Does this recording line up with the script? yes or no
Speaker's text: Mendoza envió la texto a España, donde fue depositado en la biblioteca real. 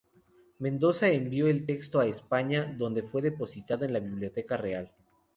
no